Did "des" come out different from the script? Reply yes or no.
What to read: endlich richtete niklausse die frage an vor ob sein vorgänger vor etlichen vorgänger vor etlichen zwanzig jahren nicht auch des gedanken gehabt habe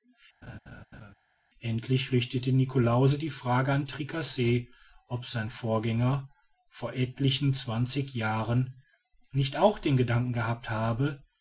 yes